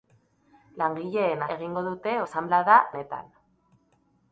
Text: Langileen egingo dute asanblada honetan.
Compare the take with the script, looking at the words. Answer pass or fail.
pass